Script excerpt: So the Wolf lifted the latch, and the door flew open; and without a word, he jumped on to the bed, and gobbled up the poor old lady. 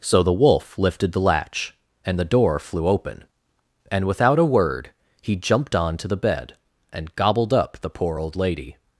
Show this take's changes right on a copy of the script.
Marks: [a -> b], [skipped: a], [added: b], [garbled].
So the Wolf lifted the latch, and the door flew open; and without a word, he jumped on to the bed, and gobbled up the poor old lady.